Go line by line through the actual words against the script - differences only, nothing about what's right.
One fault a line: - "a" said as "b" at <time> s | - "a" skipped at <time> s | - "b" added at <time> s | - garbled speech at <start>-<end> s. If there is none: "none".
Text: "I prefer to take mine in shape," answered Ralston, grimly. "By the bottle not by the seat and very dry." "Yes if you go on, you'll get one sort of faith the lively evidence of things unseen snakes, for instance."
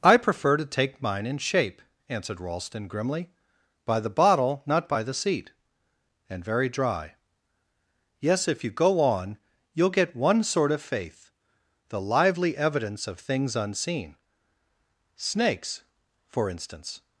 none